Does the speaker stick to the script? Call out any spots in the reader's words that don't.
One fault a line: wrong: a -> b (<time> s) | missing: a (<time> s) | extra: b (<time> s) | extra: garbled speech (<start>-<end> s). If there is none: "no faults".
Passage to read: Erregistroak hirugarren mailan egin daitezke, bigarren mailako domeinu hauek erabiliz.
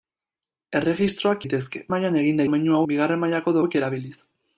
wrong: hirugarren -> daitezke (1.4 s)
wrong: daitezke -> domeinu (2.4 s)
missing: domeinu (3.6 s)